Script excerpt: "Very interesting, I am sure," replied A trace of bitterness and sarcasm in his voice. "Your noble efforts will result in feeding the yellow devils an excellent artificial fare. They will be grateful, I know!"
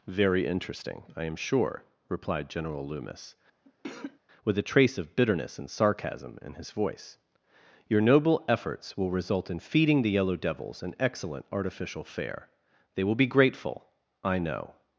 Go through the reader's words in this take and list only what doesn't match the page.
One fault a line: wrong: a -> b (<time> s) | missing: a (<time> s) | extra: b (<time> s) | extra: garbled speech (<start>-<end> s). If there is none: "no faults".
extra: General Loomis with (2.5 s)